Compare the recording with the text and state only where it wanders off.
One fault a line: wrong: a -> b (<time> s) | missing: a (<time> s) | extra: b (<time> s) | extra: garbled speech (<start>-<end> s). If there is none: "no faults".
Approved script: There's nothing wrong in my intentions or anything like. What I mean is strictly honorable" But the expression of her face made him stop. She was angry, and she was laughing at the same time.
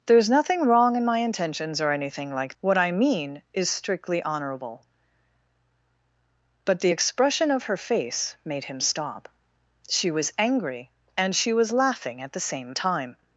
no faults